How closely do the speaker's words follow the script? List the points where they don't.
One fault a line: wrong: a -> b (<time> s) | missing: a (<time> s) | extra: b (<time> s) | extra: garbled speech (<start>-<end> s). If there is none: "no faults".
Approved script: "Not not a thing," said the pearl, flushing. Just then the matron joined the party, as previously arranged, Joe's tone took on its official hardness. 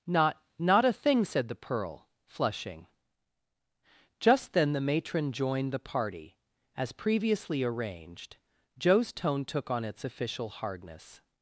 no faults